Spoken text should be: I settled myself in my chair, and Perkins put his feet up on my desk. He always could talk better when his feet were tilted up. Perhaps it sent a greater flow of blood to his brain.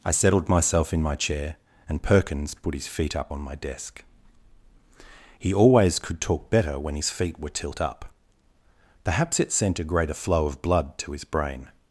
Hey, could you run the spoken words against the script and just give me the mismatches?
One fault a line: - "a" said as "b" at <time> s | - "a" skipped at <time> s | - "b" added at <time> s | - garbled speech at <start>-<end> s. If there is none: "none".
- "tilted" said as "tilt" at 7.5 s